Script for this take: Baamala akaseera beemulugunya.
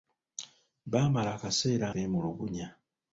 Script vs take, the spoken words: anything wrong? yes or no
no